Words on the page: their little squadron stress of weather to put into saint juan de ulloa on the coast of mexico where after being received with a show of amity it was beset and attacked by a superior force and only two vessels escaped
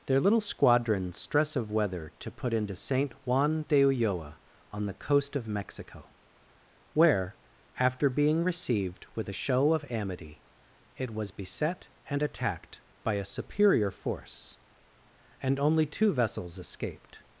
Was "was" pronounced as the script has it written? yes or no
yes